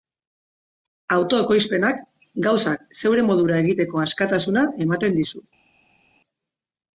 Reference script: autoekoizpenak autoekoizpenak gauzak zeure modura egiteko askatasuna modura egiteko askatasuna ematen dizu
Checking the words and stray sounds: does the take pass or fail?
fail